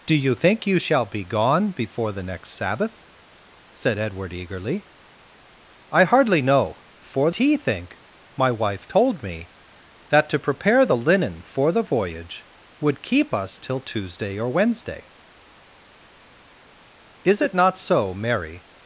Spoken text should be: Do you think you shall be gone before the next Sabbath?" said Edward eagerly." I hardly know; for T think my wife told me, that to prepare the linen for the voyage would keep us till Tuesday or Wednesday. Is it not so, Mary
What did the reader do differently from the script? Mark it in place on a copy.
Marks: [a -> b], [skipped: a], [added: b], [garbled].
Do you think you shall be gone before the next Sabbath?" said Edward eagerly." I hardly know; for T think my wife told me, that to prepare the linen for the voyage would keep us till Tuesday or Wednesday. Is it not so, Mary